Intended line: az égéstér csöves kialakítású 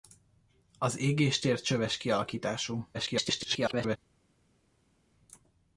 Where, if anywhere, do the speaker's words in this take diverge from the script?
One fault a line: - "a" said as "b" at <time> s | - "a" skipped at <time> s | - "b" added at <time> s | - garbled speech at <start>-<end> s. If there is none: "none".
- garbled speech at 2.9-4.0 s